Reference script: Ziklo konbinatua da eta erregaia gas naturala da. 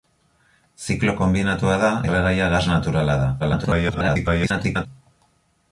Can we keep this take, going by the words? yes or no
no